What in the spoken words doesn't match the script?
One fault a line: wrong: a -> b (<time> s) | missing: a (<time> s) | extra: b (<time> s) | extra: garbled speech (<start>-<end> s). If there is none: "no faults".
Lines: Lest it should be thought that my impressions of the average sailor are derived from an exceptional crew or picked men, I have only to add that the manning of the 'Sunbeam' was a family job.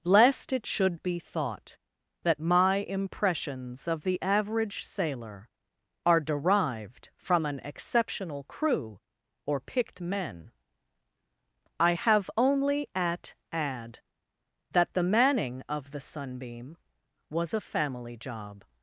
wrong: to -> at (12.9 s)